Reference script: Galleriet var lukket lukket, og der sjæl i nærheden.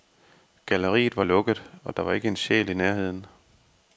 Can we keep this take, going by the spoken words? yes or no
no